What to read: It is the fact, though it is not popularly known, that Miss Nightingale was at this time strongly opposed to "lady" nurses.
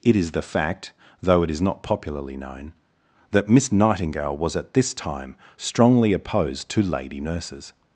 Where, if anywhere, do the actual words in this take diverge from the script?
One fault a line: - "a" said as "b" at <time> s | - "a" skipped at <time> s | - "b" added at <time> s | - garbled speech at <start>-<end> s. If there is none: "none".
none